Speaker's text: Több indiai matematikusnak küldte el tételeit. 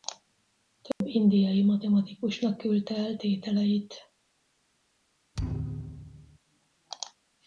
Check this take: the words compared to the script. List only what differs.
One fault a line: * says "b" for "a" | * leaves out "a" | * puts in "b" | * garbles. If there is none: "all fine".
all fine